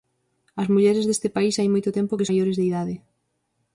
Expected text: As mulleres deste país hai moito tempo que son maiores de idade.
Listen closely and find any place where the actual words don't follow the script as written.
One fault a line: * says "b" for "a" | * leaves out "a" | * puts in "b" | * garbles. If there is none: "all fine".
* leaves out "son"